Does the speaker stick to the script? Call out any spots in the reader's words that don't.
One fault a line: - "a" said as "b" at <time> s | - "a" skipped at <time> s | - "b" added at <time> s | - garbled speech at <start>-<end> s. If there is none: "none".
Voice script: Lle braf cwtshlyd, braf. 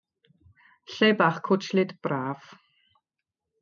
- "braf" said as "bach" at 1.2 s